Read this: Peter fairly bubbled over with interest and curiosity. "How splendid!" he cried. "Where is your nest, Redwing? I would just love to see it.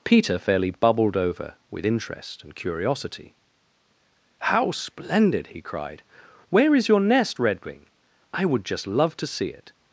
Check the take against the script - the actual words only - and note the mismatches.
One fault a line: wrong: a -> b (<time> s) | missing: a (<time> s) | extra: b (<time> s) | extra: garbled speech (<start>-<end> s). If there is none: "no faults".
no faults